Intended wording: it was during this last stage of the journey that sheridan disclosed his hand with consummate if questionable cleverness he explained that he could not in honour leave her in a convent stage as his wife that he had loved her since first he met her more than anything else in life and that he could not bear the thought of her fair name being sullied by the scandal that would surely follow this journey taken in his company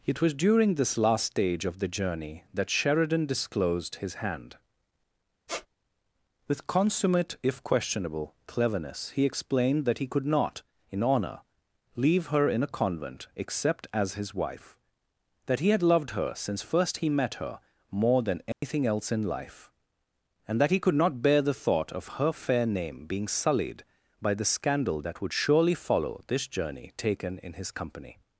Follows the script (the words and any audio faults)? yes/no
no